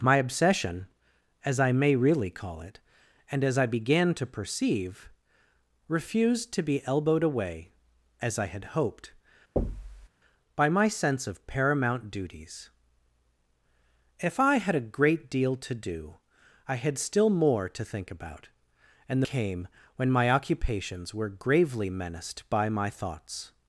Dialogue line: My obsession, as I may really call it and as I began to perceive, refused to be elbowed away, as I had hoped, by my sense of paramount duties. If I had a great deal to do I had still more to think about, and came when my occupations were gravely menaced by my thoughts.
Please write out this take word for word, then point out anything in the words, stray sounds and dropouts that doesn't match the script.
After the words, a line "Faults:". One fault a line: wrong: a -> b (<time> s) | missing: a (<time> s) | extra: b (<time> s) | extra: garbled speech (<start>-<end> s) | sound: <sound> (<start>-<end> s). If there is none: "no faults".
My obsession, as I may really call it and as I began to perceive, refused to be elbowed away, as I had hoped, by my sense of paramount duties. If I had a great deal to do I had still more to think about, and came when my occupations were gravely menaced by my thoughts.
Faults:
sound: thud (9.6-10.1 s)